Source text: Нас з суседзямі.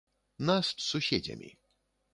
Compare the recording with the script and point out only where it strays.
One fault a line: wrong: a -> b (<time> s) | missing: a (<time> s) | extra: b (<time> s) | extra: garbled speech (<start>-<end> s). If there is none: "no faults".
no faults